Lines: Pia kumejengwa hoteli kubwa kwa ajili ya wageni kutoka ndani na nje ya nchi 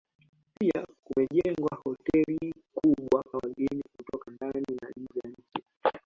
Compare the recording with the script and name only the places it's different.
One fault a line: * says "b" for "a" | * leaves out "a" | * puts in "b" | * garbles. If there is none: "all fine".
* leaves out "kwa ajili ya"